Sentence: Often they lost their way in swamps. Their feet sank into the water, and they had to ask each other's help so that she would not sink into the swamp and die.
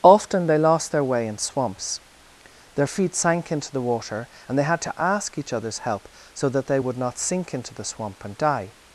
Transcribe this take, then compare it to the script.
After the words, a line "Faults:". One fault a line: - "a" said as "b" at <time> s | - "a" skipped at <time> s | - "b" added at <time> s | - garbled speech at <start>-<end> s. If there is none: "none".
Often they lost their way in swamps. Their feet sank into the water, and they had to ask each other's help so that they would not sink into the swamp and die.
Faults:
- "she" said as "they" at 6.7 s